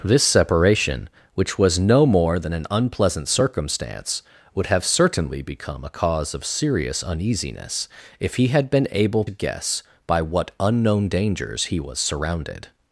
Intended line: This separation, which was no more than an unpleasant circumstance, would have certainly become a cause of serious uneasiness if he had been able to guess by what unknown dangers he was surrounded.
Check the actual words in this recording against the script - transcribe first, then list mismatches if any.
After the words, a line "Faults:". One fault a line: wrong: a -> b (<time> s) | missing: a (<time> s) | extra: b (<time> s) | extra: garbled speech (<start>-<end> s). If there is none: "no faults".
This separation, which was no more than an unpleasant circumstance, would have certainly become a cause of serious uneasiness if he had been able guess by what unknown dangers he was surrounded.
Faults:
missing: to (9.2 s)